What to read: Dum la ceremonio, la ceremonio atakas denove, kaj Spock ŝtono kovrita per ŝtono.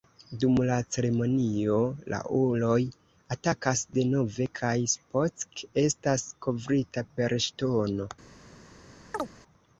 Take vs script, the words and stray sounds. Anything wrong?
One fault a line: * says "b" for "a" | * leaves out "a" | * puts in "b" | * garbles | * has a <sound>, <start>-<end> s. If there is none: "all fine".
* says "uloj" for "ceremonio"
* says "estas" for "ŝtono"
* has a chirp, 9.1-9.3 s